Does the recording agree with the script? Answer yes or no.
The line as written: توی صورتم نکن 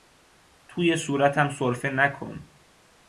no